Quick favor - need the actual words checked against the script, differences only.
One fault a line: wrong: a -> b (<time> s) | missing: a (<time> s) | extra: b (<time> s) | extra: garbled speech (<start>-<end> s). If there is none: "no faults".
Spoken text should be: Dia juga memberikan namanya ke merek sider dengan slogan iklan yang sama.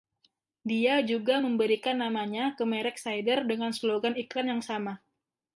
no faults